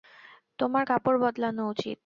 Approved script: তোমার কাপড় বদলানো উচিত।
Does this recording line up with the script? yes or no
yes